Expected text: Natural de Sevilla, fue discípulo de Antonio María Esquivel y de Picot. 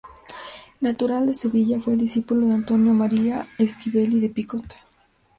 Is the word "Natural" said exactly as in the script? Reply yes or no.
yes